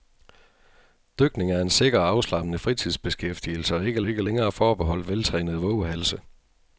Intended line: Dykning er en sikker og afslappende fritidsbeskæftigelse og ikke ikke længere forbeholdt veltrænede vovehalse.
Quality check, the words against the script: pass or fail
pass